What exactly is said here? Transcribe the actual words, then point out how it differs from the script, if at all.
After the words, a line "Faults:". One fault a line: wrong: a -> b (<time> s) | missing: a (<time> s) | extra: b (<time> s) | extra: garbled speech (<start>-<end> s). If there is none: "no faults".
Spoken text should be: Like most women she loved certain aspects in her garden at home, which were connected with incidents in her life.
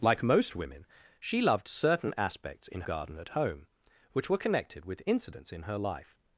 Like most women she loved certain aspects in garden at home, which were connected with incidents in her life.
Faults:
missing: her (2.8 s)